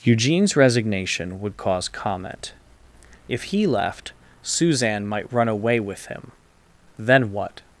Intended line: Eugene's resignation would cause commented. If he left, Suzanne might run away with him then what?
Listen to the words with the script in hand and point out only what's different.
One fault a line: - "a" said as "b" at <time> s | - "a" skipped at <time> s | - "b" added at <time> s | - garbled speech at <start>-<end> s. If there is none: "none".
- "commented" said as "comment" at 1.9 s